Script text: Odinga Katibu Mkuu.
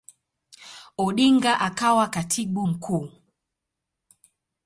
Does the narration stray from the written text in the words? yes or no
yes